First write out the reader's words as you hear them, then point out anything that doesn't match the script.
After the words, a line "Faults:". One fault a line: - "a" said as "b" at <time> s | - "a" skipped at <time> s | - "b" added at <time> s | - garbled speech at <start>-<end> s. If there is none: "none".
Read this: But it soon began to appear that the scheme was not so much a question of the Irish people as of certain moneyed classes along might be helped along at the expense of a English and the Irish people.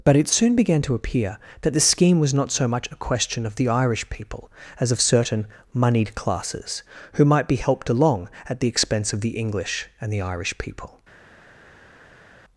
But it soon began to appear that the scheme was not so much a question of the Irish people as of certain moneyed classes who might be helped along at the expense of the English and the Irish people.
Faults:
- "along" said as "who" at 7.1 s
- "a" said as "the" at 9.2 s